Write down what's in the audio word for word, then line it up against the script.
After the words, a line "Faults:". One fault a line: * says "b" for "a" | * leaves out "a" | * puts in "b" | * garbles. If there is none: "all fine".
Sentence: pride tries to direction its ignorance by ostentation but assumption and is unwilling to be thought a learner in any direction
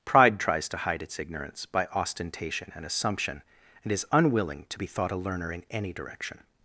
pride tries to hide its ignorance by ostentation and assumption and is unwilling to be thought a learner in any direction
Faults:
* says "hide" for "direction"
* says "and" for "but"